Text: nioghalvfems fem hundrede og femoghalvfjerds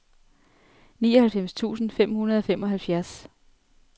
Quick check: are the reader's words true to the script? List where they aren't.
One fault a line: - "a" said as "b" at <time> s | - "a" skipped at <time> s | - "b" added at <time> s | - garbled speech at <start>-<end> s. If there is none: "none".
- "tusind" added at 1.5 s